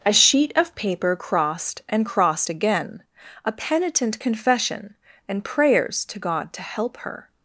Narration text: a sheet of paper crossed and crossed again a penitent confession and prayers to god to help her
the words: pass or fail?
pass